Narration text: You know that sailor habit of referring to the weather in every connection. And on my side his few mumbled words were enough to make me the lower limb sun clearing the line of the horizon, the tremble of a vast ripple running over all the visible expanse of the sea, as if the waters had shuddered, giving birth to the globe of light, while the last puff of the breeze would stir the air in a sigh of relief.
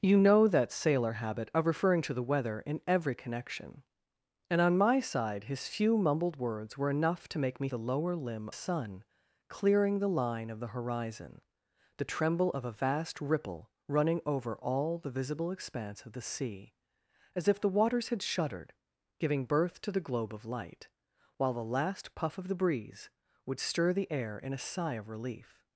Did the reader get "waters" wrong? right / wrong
right